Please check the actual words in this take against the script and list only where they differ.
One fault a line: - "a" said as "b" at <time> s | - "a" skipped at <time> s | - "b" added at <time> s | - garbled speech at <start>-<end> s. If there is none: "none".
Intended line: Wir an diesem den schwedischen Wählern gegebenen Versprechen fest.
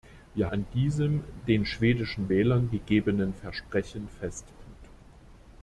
none